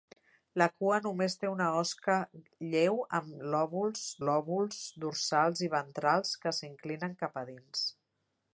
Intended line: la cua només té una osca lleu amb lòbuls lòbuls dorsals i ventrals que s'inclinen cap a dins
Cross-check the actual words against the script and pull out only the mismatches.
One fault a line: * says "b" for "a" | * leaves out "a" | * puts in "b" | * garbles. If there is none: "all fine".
all fine